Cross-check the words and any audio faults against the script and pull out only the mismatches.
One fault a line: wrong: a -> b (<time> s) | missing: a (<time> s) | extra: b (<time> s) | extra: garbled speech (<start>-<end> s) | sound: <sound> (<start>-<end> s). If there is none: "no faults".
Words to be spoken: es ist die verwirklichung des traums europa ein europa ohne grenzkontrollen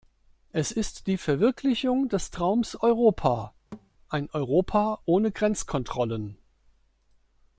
sound: thud (3.7-3.9 s)